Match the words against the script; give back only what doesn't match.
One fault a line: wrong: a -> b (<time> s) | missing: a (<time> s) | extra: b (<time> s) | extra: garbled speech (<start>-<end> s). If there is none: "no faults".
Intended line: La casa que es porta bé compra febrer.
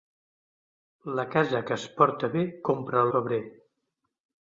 no faults